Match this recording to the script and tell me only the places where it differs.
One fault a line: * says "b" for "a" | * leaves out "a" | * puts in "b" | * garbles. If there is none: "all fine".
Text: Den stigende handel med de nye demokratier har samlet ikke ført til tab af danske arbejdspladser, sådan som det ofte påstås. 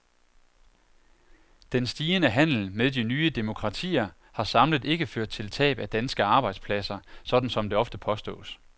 all fine